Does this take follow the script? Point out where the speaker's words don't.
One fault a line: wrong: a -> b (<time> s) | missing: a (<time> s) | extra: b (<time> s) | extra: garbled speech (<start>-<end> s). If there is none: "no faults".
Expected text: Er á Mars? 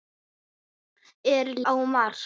no faults